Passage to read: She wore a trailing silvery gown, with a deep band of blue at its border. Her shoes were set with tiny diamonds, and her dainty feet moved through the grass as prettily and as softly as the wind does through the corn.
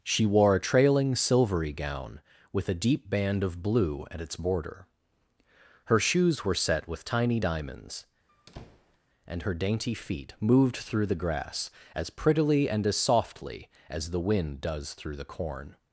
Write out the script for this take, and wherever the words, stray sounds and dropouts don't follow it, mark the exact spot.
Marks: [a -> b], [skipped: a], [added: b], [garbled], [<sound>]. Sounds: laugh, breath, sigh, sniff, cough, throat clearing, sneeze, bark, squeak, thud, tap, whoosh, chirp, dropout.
She wore a trailing silvery gown, with a deep band of blue at its border. Her shoes were set with tiny diamonds, [squeak] and her dainty feet moved through the grass as prettily and as softly as the wind does through the corn.